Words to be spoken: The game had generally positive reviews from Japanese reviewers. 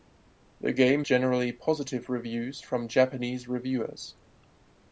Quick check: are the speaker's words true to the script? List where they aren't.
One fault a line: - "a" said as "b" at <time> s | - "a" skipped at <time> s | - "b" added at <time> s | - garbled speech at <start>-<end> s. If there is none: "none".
- "had" skipped at 1.1 s